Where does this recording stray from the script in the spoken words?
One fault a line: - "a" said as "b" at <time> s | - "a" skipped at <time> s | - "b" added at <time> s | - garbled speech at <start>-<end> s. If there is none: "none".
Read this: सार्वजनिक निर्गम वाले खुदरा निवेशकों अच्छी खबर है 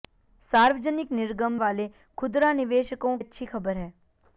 none